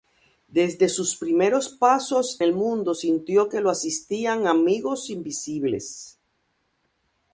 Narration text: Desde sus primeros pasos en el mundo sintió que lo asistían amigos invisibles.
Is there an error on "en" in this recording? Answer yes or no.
yes